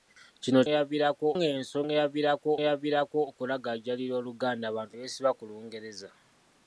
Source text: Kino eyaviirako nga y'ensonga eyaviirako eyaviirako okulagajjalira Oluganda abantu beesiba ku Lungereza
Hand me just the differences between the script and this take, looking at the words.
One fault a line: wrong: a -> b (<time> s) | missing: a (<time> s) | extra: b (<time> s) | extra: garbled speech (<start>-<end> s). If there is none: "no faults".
no faults